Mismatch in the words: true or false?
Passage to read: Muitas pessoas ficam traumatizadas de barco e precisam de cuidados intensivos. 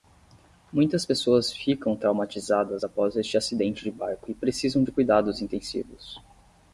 true